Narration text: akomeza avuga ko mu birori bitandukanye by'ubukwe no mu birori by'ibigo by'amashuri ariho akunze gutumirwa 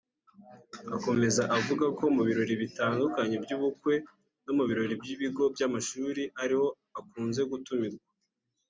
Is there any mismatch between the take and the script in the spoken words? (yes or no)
no